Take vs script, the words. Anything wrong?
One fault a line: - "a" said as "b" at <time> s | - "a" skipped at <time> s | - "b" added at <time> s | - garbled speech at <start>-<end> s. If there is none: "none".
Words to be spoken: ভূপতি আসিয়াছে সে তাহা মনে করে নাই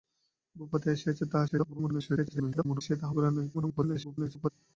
- garbled speech at 1.5-2.8 s
- "মনে" skipped at 3.1 s
- garbled speech at 3.5-4.5 s